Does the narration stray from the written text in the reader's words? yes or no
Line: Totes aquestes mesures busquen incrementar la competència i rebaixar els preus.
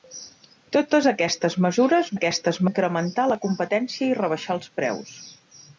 yes